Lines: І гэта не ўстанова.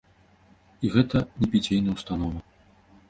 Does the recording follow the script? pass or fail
fail